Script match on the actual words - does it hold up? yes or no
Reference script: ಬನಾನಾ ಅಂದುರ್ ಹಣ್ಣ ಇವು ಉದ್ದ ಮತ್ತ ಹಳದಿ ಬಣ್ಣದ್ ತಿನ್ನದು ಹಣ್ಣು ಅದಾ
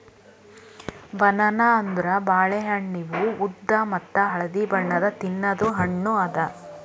no